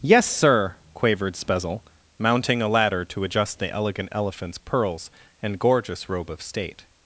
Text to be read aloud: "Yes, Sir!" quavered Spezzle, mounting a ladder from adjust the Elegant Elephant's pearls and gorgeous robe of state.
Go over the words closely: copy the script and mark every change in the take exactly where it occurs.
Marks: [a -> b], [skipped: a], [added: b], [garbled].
"Yes, Sir!" quavered Spezzle, mounting a ladder [from -> to] adjust the Elegant Elephant's pearls and gorgeous robe of state.